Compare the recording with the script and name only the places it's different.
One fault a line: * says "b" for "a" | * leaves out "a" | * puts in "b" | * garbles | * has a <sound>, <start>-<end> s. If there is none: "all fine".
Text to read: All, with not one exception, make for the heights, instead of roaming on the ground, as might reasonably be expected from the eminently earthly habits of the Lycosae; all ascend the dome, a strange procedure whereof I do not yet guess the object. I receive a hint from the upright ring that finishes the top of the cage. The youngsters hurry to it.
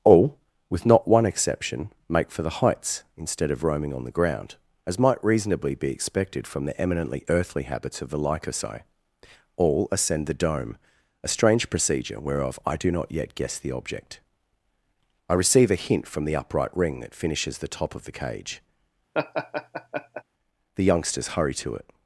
* has a laugh, 19.1-20.2 s